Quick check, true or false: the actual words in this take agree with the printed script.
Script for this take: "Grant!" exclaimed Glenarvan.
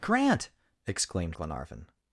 true